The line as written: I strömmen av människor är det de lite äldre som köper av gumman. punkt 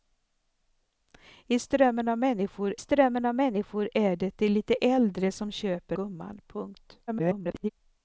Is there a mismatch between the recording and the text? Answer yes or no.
yes